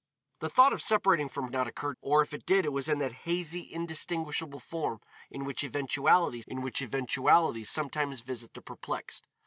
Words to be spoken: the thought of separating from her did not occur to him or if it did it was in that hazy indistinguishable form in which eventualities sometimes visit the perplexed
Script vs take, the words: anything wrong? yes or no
yes